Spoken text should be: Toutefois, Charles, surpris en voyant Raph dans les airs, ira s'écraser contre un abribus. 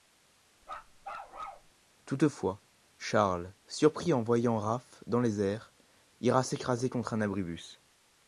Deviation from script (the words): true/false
false